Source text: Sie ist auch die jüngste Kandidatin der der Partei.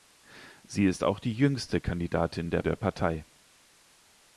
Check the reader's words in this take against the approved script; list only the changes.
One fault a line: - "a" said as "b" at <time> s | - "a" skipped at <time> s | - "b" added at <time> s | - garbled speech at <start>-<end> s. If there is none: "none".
none